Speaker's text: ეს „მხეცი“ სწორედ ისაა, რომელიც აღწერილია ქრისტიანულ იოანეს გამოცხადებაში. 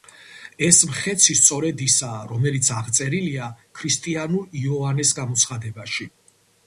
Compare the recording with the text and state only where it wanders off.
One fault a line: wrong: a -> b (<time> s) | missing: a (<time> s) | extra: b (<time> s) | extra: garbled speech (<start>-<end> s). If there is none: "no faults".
no faults